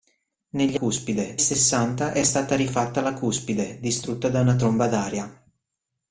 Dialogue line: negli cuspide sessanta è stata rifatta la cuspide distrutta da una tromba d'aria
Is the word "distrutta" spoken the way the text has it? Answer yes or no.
yes